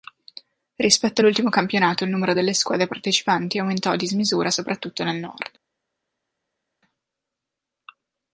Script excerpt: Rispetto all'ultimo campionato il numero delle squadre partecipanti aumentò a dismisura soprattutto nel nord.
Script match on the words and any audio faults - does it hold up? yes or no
yes